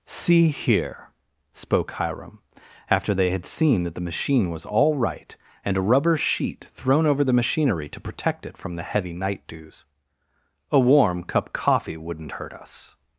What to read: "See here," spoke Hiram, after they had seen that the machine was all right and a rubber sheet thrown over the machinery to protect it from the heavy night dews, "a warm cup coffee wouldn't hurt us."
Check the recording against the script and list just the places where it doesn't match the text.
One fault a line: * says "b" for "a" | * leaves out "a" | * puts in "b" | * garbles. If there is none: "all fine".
all fine